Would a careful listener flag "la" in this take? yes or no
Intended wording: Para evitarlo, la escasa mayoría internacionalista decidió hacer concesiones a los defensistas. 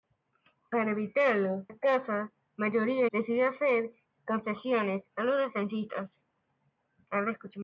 yes